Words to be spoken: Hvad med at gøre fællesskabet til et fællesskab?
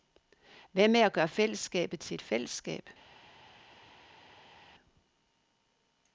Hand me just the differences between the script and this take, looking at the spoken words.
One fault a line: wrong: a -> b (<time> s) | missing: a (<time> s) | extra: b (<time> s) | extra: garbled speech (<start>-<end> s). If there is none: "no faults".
no faults